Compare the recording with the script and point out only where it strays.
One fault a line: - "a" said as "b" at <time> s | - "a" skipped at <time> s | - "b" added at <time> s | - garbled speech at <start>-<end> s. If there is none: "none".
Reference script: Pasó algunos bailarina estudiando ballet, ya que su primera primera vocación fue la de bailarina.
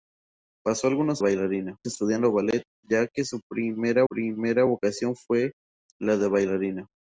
none